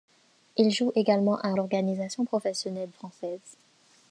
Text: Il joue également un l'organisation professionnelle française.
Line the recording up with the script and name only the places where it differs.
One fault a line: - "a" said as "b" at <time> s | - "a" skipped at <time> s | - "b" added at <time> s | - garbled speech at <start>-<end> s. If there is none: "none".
none